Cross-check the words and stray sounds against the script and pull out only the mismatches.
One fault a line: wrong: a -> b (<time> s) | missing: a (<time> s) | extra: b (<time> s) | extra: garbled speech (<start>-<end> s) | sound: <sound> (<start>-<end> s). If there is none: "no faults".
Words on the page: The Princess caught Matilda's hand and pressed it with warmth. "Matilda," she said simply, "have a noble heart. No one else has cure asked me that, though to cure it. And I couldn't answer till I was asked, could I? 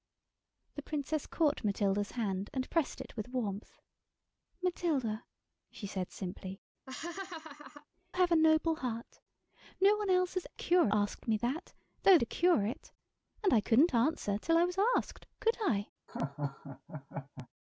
sound: laugh (6.9-7.9 s)
sound: laugh (16.1-17.5 s)